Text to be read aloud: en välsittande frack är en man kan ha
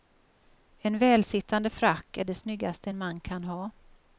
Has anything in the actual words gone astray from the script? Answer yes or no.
yes